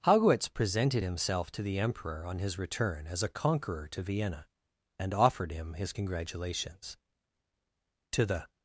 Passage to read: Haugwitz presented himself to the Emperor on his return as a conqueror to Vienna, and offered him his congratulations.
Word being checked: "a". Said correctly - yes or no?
yes